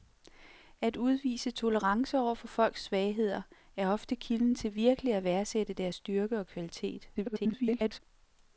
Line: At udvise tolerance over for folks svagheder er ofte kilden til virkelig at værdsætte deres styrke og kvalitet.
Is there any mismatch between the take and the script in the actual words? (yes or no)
yes